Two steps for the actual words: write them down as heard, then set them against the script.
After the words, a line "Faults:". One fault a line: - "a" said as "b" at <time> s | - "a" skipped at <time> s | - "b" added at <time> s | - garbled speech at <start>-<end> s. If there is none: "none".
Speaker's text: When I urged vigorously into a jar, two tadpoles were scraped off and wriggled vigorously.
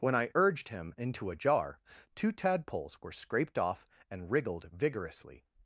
When I urged him into a jar, two tadpoles were scraped off and wriggled vigorously.
Faults:
- "vigorously" said as "him" at 0.7 s